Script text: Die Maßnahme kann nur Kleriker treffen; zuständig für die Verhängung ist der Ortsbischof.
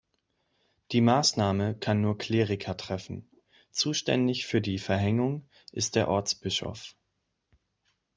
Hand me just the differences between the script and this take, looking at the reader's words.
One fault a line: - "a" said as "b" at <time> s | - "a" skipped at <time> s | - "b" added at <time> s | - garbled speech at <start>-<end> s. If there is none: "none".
none